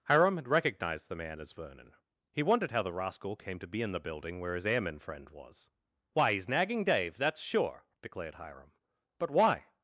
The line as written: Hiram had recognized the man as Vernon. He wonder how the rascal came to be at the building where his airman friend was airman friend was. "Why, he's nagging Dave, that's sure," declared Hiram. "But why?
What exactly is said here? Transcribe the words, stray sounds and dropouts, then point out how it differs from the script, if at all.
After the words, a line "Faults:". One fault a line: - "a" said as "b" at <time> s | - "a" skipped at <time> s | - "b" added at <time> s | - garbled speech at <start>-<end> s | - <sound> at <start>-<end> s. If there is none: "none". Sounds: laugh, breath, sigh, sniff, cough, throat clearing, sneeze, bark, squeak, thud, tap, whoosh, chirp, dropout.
Hiram had recognized the man as Vernon. He wondered how the rascal came to be in the building where his airman friend was. "Why, he's nagging Dave, that's sure," declared Hiram. "But why?
Faults:
- "wonder" said as "wondered" at 2.4 s
- "at" said as "in" at 3.8 s
- "airman friend was" skipped at 5.7 s